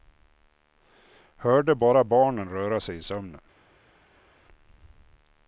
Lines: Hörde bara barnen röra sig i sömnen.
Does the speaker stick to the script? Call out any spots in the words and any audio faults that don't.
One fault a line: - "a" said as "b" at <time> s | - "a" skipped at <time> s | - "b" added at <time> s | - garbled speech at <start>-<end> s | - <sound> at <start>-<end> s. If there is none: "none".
none